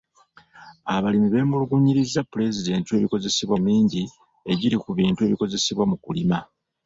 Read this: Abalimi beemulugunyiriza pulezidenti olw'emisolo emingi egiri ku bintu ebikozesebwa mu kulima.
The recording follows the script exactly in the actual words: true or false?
false